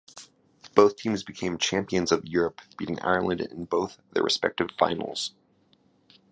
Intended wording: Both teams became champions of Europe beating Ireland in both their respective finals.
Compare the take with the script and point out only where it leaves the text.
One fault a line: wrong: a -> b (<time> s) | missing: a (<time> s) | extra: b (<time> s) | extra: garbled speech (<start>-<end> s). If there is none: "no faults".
no faults